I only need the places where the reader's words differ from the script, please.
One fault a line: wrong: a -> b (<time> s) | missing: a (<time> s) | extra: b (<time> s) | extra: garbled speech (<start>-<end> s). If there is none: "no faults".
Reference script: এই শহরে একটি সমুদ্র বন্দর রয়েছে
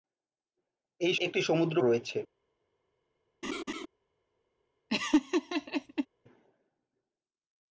missing: শহরে (1.1 s)
missing: বন্দর (1.8 s)